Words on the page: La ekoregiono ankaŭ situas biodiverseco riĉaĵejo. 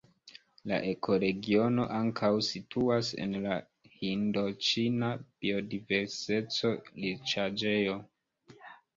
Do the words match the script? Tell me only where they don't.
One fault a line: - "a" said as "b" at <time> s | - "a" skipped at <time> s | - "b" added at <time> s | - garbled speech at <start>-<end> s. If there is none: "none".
- "en la Hindoĉina" added at 3.2 s